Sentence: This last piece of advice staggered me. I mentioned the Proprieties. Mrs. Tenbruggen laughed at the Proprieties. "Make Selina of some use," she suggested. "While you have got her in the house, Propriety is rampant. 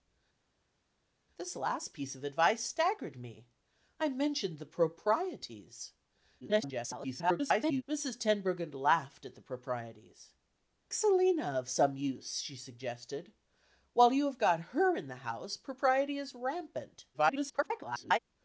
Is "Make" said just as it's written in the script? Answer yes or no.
no